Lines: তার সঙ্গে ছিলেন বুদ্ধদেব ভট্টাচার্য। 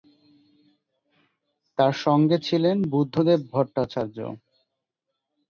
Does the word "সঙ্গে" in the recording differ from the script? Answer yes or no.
no